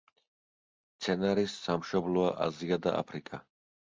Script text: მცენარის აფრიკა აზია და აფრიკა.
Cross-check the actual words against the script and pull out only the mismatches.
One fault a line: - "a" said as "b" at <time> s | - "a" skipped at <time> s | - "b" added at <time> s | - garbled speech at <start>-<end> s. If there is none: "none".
- "აფრიკა" said as "სამშობლოა" at 1.6 s